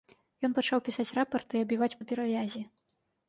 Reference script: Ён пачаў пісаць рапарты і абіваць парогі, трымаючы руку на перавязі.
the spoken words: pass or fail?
fail